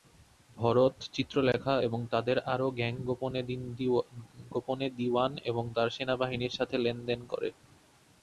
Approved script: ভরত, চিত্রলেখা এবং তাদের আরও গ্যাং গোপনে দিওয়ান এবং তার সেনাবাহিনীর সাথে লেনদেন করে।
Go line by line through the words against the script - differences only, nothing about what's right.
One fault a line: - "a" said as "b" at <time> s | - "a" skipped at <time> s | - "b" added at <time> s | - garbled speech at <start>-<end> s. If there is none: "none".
none